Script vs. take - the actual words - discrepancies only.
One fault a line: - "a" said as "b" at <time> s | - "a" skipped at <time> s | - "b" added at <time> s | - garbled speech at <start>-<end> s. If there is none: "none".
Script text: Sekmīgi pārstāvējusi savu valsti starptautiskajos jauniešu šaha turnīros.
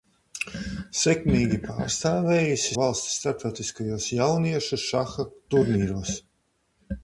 - "savu" skipped at 2.8 s